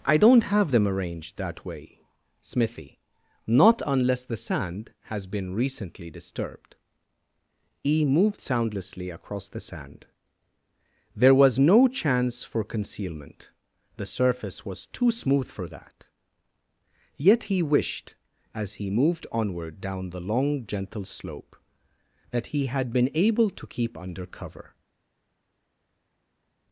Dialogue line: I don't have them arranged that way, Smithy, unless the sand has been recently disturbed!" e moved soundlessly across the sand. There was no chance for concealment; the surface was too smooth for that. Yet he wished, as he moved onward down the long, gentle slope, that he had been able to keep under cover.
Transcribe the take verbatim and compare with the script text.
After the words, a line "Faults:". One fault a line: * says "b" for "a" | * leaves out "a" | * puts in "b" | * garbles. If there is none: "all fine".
I don't have them arranged that way, Smithy, not unless the sand has been recently disturbed!" e moved soundlessly across the sand. There was no chance for concealment; the surface was too smooth for that. Yet he wished, as he moved onward down the long, gentle slope, that he had been able to keep under cover.
Faults:
* puts in "not"